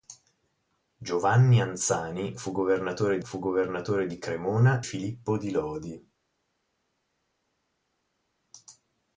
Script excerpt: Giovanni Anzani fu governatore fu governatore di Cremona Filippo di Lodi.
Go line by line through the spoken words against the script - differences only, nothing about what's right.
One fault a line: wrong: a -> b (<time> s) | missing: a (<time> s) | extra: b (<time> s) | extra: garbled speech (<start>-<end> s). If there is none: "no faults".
no faults